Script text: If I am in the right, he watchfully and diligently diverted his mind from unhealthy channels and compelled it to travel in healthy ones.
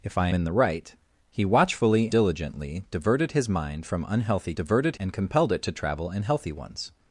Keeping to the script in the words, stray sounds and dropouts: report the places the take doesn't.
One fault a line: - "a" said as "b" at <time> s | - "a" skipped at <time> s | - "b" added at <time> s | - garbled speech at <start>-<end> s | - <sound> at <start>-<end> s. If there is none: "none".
- "am" skipped at 0.3 s
- "and" skipped at 2.1 s
- "channels" said as "diverted" at 4.6 s